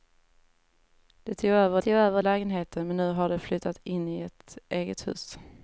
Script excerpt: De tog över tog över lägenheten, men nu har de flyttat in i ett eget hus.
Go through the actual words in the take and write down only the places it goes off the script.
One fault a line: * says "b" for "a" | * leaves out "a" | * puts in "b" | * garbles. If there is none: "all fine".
all fine